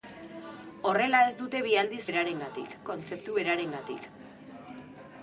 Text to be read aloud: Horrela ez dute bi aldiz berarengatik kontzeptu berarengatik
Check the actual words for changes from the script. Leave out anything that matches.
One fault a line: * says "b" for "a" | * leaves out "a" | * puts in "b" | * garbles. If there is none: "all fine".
all fine